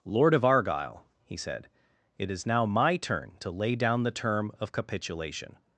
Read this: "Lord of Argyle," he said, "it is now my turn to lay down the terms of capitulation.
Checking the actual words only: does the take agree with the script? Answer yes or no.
no